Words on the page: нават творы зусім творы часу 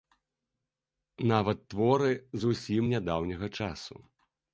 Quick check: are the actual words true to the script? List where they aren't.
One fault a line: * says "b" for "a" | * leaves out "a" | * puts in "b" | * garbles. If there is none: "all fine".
* says "нядаўняга" for "творы"